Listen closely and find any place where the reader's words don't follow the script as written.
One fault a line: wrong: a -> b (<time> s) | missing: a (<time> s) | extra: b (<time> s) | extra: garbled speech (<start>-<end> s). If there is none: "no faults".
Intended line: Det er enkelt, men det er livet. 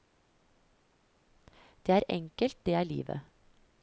missing: men (2.7 s)